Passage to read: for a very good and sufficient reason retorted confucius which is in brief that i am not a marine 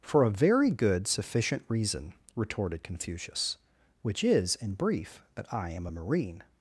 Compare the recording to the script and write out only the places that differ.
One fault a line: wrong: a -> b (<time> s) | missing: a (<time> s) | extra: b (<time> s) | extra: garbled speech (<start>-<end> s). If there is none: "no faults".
missing: and (1.1 s)
missing: not (5.9 s)